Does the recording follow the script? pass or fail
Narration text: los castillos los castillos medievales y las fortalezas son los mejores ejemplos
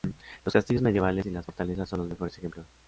fail